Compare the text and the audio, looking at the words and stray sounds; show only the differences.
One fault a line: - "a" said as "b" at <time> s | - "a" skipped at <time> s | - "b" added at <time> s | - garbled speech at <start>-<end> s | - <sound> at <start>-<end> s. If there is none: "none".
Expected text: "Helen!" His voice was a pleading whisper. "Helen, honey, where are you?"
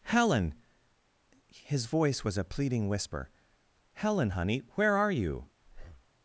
- breath at 5.6-6.1 s